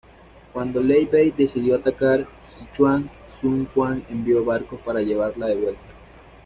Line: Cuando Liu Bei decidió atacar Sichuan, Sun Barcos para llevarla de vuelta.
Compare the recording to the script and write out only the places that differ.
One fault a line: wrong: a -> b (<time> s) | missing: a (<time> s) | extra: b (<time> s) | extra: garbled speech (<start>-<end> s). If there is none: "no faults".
extra: Quan envió (3.7 s)